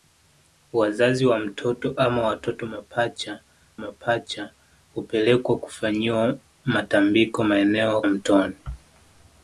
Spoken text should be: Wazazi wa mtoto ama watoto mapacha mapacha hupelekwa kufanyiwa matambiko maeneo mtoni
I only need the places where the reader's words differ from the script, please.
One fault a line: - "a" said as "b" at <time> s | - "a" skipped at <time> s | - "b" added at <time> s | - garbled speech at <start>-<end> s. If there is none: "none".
none